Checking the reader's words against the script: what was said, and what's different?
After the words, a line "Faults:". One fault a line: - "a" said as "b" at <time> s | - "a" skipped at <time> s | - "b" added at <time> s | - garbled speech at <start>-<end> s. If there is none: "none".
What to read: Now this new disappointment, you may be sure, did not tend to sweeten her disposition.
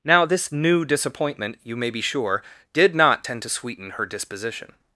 Now this new disappointment, you may be sure, did not tend to sweeten her disposition.
Faults:
none